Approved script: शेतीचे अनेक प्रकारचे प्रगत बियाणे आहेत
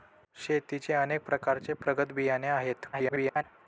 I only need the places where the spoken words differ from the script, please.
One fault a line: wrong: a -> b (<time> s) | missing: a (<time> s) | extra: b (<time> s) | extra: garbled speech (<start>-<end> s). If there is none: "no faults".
extra: garbled speech (2.9-3.4 s)